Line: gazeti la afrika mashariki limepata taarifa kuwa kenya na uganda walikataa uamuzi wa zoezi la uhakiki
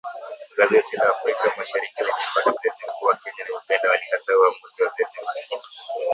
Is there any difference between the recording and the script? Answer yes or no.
yes